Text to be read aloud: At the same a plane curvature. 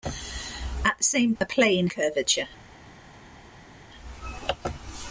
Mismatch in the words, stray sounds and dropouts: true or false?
false